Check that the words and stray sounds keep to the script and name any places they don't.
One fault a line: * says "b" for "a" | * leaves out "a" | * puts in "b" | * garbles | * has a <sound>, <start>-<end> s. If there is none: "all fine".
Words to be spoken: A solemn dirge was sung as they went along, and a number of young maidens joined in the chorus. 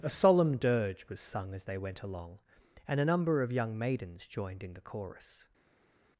all fine